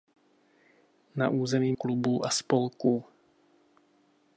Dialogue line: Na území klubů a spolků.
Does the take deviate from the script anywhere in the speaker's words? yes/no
no